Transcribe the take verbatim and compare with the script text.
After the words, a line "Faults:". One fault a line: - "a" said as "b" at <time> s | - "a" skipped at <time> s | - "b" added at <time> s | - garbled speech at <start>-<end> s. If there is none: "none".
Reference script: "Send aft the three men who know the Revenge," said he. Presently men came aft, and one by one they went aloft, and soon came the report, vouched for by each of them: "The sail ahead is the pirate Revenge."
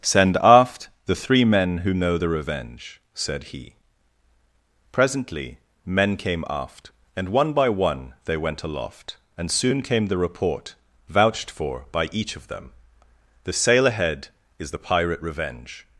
"Send aft the three men who know the Revenge," said he. Presently men came aft, and one by one they went aloft, and soon came the report, vouched for by each of them: "The sail ahead is the pirate Revenge."
Faults:
none